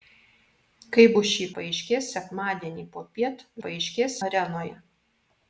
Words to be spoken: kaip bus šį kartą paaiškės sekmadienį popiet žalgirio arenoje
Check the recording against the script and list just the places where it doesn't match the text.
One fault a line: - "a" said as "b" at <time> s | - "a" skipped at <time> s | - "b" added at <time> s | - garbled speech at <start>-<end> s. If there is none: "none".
- "kartą" skipped at 1.5 s
- "žalgirio" said as "paaiškės" at 3.7 s